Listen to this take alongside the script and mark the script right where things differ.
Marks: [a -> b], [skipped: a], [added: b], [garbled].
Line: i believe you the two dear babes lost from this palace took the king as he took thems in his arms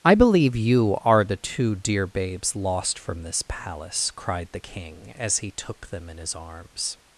i believe you [added: are] the two dear babes lost from this palace [took -> cried] the king as he took [thems -> them] in his arms